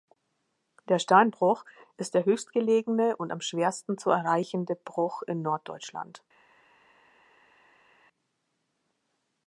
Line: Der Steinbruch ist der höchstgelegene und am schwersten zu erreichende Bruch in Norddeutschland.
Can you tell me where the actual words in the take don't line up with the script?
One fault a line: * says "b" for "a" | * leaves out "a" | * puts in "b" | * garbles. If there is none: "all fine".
all fine